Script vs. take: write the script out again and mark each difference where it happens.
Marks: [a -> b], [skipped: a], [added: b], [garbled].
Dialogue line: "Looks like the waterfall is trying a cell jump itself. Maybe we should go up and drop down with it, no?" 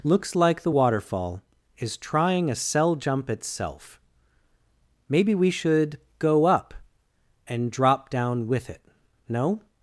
"Looks like the waterfall is trying a cell jump itself. Maybe we should go up and drop down with it, no?"